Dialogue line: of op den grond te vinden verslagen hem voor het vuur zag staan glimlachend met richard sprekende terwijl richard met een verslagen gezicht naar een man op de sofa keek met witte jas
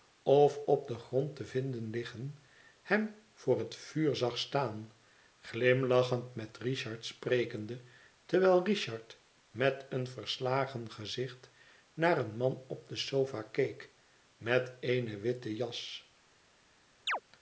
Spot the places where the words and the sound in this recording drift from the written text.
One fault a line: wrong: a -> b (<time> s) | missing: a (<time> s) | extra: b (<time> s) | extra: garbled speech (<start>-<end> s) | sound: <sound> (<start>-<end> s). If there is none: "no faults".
wrong: verslagen -> liggen (1.9 s)
extra: eene (14.8 s)
sound: chirp (17.1-17.2 s)